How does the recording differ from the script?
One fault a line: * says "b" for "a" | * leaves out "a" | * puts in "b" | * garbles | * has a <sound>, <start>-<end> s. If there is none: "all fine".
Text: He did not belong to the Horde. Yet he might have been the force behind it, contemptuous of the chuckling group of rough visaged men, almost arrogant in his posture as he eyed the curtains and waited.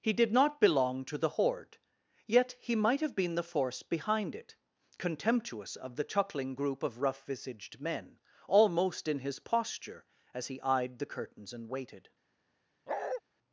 * leaves out "arrogant"
* has a bark, 12.9-13.2 s